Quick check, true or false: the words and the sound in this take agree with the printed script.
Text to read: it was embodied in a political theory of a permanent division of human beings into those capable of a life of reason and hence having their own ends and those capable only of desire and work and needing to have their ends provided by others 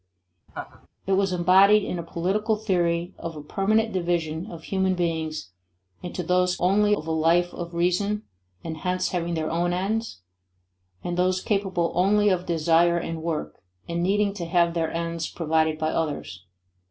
false